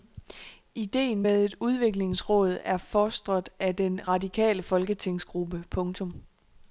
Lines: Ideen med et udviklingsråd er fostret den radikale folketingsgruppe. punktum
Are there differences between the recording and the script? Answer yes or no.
yes